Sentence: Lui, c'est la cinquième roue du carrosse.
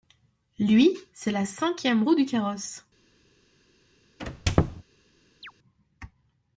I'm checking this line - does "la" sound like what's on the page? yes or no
yes